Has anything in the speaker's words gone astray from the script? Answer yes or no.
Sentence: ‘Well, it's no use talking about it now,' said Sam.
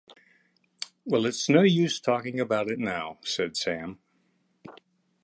no